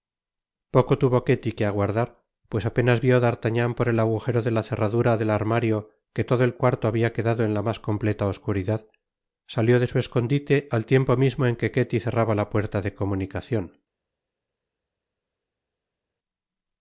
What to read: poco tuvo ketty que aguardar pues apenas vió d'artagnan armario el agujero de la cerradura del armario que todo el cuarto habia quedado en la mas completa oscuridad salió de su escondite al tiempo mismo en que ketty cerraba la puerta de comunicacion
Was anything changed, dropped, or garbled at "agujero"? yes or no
no